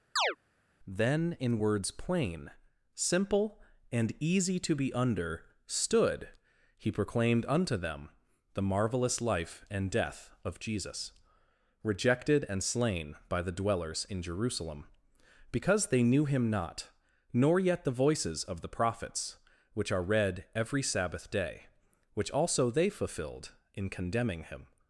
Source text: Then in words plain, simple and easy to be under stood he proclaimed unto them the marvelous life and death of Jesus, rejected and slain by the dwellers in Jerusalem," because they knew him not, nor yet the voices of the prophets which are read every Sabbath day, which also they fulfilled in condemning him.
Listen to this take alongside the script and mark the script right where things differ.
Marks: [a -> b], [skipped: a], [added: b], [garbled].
Then in words plain, simple and easy to be under stood he proclaimed unto them the marvelous life and death of Jesus, rejected and slain by the dwellers in Jerusalem," because they knew him not, nor yet the voices of the prophets which are read every Sabbath day, which also they fulfilled in condemning him.